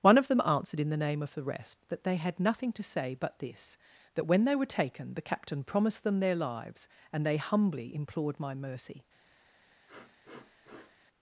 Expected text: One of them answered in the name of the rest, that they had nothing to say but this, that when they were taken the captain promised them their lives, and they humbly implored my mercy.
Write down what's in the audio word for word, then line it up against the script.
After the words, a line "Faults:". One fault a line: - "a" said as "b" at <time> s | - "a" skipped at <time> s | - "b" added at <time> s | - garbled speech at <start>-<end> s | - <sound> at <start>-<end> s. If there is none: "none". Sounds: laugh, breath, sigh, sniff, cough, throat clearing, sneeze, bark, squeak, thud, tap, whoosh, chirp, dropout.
One of them answered in the name of the rest, that they had nothing to say but this, that when they were taken the captain promised them their lives, and they humbly implored my mercy.
Faults:
- sniff at 9.9-11.0 s